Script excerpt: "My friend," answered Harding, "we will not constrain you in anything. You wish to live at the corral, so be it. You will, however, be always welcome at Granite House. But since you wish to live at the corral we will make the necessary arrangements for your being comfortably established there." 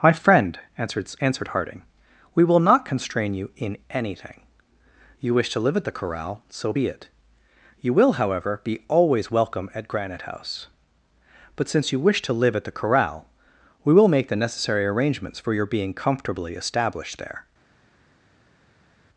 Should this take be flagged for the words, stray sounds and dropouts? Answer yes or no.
yes